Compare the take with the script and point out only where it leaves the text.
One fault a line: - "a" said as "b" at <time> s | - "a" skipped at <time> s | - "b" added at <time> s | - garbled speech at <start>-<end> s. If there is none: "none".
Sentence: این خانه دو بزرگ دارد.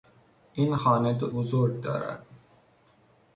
none